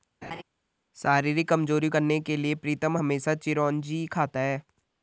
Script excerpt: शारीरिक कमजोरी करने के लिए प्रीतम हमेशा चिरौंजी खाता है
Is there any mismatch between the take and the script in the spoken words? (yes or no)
no